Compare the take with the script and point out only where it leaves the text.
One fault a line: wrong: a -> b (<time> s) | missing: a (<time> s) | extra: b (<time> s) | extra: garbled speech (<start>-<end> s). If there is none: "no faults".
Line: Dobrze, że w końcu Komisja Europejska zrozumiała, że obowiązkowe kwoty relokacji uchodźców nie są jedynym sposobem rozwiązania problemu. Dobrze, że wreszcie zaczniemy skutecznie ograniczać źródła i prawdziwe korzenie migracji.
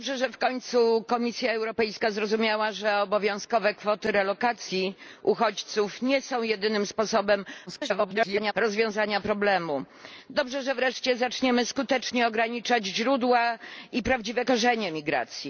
extra: garbled speech (7.7-8.5 s)